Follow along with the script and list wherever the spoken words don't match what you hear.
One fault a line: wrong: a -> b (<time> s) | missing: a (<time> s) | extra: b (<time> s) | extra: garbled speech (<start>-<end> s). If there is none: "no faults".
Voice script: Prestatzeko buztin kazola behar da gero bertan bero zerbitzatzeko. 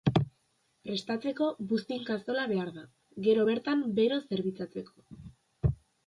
no faults